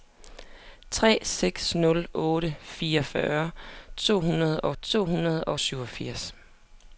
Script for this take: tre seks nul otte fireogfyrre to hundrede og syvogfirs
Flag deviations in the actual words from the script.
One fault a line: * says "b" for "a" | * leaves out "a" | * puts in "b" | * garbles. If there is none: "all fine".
* puts in "to hundrede og"